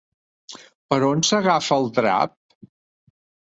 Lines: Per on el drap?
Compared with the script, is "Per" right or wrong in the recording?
right